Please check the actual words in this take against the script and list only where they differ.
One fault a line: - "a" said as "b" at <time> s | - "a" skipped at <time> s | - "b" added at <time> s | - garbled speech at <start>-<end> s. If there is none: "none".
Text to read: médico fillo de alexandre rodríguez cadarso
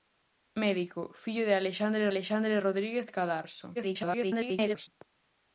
- "alexandre" added at 2.1 s
- garbled speech at 3.8-4.9 s